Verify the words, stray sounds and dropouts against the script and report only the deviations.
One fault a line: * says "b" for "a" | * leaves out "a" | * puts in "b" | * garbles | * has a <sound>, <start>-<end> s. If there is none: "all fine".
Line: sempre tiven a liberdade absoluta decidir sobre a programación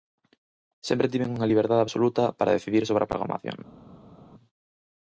* says "unha" for "a"
* puts in "para"